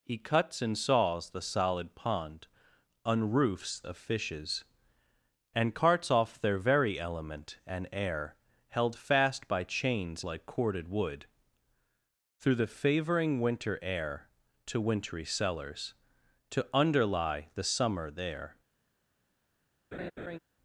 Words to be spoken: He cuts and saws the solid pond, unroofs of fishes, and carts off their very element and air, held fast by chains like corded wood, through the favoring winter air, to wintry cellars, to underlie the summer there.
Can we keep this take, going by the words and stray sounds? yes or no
no